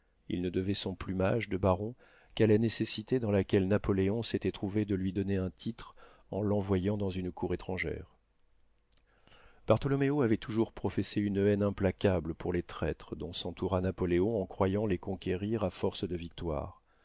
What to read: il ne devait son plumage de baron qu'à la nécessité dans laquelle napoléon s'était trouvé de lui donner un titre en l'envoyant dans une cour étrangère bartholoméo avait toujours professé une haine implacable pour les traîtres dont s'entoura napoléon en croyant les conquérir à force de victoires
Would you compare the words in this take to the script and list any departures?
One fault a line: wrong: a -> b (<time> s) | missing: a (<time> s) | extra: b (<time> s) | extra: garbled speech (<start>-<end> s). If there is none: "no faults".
no faults